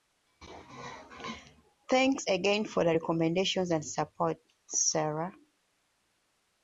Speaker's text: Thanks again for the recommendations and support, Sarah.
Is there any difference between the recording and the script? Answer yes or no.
no